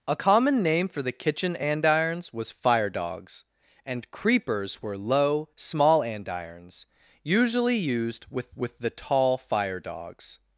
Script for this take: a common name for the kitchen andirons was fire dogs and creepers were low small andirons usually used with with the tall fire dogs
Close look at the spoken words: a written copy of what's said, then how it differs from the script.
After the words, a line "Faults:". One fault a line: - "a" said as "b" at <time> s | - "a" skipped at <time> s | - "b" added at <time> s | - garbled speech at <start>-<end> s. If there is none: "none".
a common name for the kitchen andirons was fire dogs and creepers were low small andirons usually used with with the tall fire dogs
Faults:
none